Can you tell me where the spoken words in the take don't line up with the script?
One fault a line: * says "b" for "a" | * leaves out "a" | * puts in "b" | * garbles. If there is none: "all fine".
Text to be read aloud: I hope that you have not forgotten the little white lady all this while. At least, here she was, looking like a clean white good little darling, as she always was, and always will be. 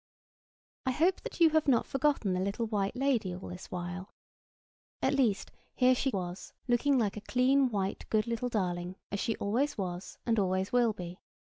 all fine